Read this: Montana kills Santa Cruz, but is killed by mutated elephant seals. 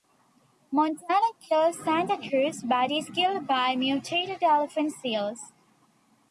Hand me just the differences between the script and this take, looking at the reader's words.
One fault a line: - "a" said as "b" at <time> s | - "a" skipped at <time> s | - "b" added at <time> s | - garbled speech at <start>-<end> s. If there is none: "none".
none